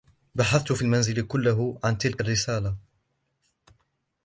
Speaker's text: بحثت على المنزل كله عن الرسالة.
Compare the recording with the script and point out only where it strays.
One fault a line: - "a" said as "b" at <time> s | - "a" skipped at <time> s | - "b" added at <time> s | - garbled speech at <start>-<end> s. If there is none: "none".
- "على" said as "في" at 0.7 s
- "تلك" added at 2.0 s